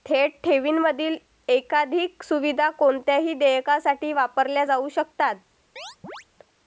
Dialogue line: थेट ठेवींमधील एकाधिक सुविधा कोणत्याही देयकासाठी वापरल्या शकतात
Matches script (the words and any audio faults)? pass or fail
fail